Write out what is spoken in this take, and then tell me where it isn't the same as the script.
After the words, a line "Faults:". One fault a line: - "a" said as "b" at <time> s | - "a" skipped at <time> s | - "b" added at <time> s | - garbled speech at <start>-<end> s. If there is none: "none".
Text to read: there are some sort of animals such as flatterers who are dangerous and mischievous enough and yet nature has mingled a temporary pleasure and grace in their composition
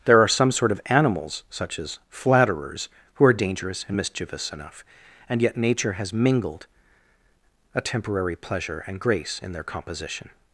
there are some sort of animals such as flatterers who are dangerous and mischievous enough and yet nature has mingled a temporary pleasure and grace in their composition
Faults:
none